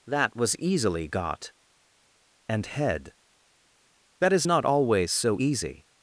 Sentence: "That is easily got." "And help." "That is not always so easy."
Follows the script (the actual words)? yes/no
no